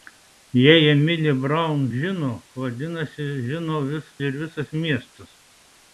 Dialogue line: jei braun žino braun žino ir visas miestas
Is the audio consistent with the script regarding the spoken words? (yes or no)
no